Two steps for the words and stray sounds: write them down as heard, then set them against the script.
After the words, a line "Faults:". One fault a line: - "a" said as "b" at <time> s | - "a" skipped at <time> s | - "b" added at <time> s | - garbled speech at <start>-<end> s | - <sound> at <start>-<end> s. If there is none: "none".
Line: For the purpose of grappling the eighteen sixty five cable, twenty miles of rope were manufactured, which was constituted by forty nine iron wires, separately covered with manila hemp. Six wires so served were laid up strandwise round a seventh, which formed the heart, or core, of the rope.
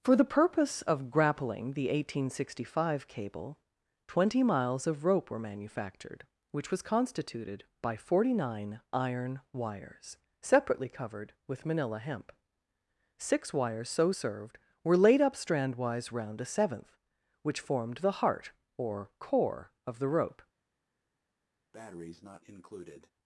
For the purpose of grappling the eighteen sixty five cable, twenty miles of rope were manufactured, which was constituted by forty nine iron wires, separately covered with manila hemp. Six wires so served were laid up strandwise round a seventh, which formed the heart, or core, of the rope.
Faults:
- breath at 21.7-23.1 s